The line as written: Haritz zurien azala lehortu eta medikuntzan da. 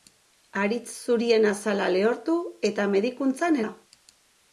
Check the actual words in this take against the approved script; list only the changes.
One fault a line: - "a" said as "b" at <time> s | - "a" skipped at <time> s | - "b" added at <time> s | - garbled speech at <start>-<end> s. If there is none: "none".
none